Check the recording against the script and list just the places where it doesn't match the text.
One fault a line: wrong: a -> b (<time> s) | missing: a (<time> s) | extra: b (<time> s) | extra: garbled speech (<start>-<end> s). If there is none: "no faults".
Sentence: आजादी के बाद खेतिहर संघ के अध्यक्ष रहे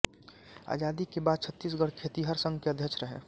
extra: छत्तीसगढ़ (1.4 s)